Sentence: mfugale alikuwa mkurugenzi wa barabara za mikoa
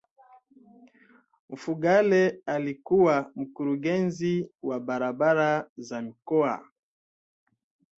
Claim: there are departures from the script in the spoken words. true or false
false